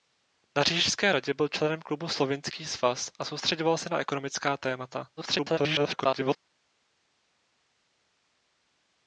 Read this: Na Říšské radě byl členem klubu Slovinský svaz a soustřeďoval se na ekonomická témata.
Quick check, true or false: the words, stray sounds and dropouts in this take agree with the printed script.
false